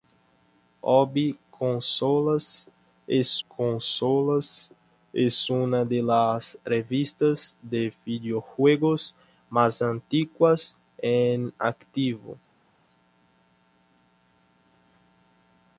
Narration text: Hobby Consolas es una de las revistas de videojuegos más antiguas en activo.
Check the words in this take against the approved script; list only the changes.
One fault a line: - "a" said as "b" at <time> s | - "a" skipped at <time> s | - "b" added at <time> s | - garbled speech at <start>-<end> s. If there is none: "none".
- "Consolas es" added at 3.5 s